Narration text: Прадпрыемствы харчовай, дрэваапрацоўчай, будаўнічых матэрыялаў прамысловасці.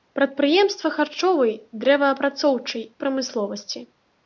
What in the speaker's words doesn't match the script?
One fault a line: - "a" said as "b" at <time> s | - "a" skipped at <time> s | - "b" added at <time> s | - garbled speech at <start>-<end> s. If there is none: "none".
- "будаўнічых матэрыялаў" skipped at 2.8 s